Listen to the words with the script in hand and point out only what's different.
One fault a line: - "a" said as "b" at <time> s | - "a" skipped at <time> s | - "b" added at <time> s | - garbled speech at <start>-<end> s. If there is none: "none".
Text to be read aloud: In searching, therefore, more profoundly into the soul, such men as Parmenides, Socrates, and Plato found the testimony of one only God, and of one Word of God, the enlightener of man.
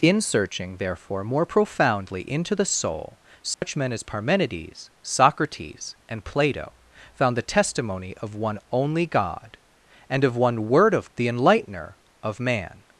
- "God" skipped at 11.1 s